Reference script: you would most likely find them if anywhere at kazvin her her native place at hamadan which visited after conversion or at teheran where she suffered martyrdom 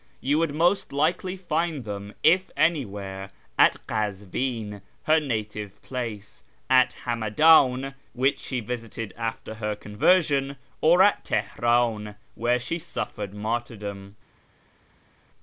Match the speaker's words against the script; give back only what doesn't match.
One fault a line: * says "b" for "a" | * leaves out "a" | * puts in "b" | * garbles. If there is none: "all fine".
* leaves out "her"
* puts in "she"
* puts in "her"